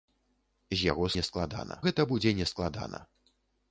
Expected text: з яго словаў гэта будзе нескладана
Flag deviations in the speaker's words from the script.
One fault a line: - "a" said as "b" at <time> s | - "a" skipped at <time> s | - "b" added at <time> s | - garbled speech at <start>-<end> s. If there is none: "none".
- "словаў" said as "нескладана" at 1.2 s